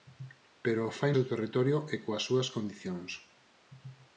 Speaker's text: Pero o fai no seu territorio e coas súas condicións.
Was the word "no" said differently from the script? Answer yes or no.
yes